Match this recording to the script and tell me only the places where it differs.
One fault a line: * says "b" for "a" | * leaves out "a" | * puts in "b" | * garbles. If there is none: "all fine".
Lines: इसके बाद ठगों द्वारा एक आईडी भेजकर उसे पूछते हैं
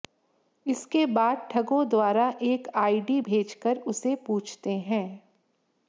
all fine